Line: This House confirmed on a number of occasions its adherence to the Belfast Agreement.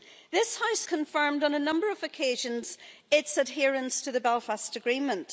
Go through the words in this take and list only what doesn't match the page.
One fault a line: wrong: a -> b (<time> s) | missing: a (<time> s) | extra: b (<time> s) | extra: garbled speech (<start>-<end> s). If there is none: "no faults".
no faults